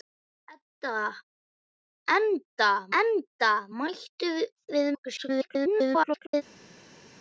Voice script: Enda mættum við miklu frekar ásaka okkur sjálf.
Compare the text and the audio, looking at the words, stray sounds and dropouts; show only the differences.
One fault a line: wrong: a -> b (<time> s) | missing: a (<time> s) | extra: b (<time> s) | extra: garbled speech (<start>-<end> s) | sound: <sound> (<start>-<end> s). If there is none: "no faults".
extra: enda (3.0 s)
missing: miklu frekar ásaka (4.9 s)
extra: garbled speech (5.2-6.4 s)